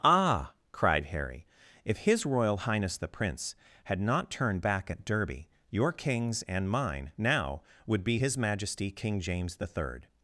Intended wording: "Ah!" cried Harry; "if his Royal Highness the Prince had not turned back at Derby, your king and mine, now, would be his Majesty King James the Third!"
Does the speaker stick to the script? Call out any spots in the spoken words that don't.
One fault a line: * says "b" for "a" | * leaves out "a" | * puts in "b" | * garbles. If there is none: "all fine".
* says "kings" for "king"